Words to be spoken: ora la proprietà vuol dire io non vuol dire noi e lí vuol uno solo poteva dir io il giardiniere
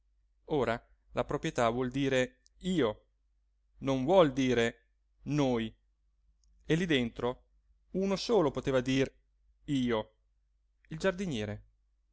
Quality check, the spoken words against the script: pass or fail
fail